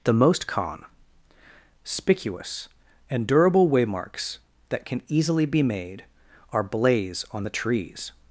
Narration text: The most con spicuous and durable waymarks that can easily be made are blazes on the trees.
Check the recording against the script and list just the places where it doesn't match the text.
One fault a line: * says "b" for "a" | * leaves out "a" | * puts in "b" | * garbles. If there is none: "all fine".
* says "blaze" for "blazes"